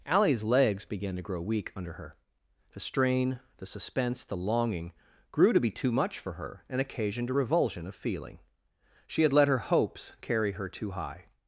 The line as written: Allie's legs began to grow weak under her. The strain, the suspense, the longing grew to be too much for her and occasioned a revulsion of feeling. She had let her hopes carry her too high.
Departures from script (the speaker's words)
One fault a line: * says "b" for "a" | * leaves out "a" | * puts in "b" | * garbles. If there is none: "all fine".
all fine